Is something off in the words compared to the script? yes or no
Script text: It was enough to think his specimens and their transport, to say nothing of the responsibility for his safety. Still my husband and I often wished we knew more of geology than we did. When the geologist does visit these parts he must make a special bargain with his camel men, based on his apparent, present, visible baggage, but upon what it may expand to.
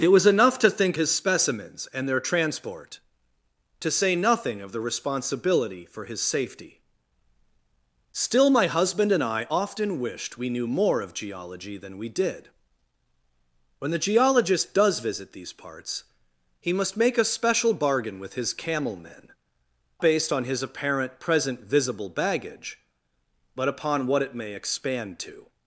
no